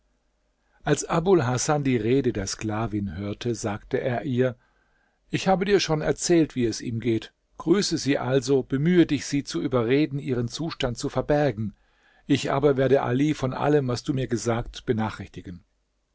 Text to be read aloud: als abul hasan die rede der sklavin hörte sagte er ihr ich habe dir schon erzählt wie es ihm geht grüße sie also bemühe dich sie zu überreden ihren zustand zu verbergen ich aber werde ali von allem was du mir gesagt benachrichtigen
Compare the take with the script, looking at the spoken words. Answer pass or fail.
pass